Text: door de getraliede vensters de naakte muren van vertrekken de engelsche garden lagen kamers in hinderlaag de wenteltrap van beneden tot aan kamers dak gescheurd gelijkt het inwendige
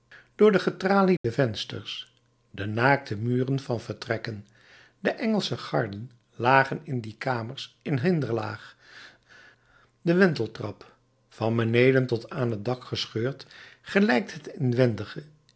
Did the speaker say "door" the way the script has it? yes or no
yes